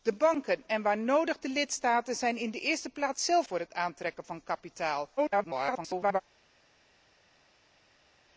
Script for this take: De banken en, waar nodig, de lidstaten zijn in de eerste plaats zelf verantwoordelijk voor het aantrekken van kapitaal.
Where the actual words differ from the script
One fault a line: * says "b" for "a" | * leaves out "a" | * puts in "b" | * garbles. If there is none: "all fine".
* leaves out "verantwoordelijk"
* garbles